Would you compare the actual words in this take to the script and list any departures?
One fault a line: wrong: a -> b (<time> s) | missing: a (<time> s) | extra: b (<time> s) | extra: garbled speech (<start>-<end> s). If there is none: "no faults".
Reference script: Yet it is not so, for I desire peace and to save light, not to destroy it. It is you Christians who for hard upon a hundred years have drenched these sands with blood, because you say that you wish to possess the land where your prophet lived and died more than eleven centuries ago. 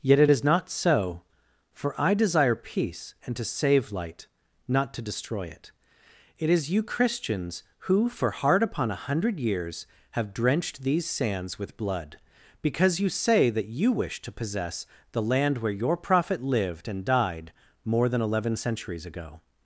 no faults